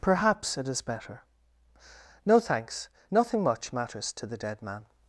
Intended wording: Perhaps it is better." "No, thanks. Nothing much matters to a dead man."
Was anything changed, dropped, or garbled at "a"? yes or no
yes